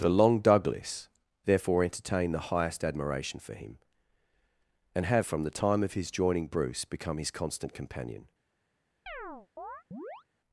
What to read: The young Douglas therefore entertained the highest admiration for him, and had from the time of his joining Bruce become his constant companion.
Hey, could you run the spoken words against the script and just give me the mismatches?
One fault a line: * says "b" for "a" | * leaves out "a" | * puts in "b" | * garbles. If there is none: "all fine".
* says "long" for "young"
* says "have" for "had"